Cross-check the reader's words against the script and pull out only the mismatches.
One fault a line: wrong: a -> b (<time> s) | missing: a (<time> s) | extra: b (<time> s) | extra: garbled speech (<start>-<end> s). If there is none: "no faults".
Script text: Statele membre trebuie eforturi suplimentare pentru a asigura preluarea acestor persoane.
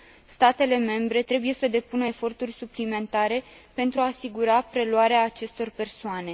extra: să depună (1.5 s)